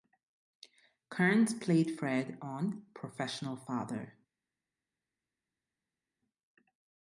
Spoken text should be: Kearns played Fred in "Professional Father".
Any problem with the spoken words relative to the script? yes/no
yes